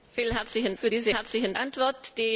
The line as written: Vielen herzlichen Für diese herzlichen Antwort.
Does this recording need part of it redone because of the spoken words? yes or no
no